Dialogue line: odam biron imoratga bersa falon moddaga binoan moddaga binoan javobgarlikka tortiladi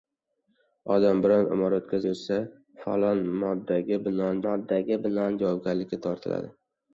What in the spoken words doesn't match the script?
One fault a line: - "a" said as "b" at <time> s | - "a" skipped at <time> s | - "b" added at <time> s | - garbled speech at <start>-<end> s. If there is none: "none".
none